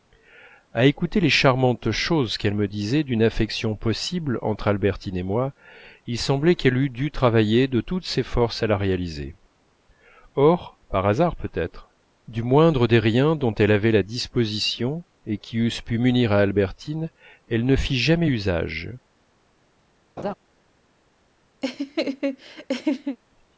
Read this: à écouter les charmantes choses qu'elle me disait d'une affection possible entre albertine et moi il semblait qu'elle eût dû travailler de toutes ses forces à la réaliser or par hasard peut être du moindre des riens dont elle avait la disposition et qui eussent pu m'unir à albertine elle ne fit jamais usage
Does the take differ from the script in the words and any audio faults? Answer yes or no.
yes